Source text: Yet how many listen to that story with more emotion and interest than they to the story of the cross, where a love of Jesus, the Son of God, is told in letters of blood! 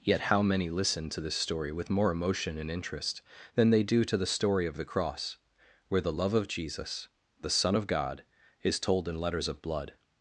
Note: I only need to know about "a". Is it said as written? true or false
false